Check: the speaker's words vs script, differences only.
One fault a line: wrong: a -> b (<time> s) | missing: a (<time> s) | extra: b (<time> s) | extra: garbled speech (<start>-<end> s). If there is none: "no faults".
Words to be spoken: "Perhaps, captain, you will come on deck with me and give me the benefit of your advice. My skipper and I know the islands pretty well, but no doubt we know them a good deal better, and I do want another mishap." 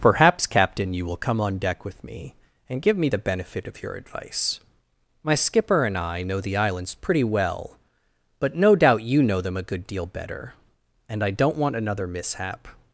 wrong: we -> you (9.0 s)
wrong: do -> don't (11.3 s)